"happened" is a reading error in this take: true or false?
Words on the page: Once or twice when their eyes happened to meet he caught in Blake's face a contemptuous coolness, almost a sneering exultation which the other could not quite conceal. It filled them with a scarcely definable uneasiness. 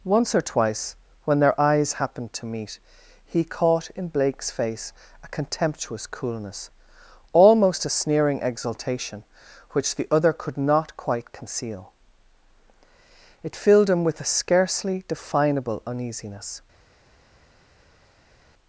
false